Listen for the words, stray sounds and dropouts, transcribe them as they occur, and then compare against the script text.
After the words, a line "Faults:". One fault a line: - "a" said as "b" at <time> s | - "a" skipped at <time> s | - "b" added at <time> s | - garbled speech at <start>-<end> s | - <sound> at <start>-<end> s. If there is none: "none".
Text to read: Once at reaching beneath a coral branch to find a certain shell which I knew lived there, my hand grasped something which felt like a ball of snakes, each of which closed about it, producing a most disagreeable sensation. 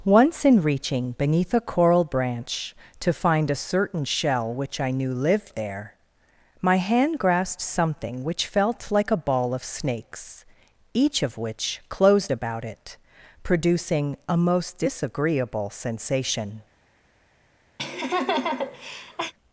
Once in reaching beneath a coral branch to find a certain shell which I knew lived there, my hand grasped something which felt like a ball of snakes, each of which closed about it, producing a most disagreeable sensation.
Faults:
- "at" said as "in" at 0.4 s
- laugh at 17.8-19.3 s